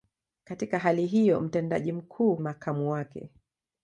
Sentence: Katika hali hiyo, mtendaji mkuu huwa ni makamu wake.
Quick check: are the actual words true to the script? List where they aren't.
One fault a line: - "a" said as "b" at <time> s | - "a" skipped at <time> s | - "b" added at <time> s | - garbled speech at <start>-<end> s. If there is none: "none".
- "huwa ni" skipped at 2.4 s